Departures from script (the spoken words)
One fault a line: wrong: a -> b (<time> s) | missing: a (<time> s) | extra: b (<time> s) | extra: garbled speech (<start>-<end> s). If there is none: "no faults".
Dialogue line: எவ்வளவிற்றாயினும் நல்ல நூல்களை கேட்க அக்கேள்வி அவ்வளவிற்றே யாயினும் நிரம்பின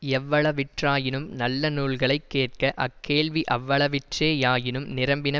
no faults